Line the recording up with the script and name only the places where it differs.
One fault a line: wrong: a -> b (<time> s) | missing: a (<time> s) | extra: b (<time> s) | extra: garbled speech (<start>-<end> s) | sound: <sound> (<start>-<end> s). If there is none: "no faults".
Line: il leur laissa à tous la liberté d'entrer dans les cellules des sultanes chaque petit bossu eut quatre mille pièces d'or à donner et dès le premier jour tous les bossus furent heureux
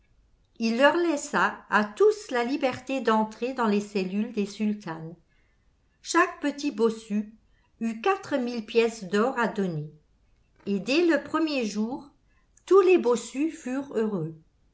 no faults